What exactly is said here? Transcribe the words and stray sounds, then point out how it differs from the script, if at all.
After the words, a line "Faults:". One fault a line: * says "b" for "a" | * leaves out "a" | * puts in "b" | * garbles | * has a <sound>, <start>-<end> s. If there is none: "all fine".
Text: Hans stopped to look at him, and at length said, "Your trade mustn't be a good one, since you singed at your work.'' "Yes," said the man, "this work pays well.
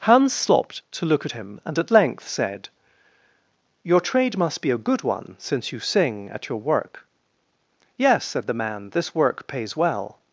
Hans stopped to look at him, and at length said, "Your trade must be a good one, since you sing at your work.'' "Yes," said the man, "this work pays well.
Faults:
* says "must" for "mustn't"
* says "sing" for "singed"